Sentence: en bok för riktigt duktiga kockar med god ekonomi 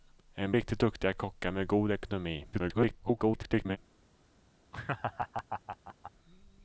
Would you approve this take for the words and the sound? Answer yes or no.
no